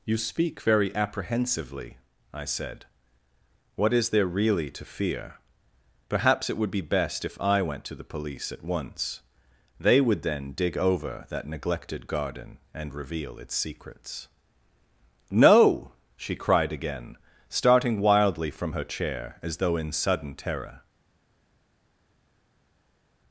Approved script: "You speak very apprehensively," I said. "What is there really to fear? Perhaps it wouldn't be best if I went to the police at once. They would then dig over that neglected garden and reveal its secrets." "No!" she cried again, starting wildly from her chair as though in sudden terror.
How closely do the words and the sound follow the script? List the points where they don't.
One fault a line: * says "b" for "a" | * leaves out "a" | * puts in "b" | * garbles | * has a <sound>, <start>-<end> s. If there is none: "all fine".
* says "would" for "wouldn't"